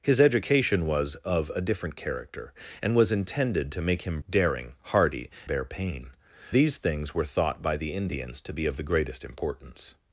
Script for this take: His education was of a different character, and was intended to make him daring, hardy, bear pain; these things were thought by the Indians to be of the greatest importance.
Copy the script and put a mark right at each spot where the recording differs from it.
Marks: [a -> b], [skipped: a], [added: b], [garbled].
His education was of a different character, and was intended to make him daring, hardy, bear pain; these things were thought by the Indians to be of the greatest importance.